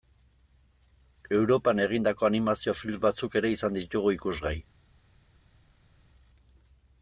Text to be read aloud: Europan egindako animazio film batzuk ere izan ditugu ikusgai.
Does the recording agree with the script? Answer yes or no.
yes